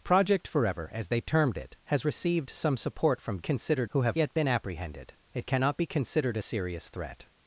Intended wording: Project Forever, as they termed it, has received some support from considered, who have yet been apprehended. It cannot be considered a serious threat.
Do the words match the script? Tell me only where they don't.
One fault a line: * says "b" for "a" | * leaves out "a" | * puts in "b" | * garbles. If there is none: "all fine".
all fine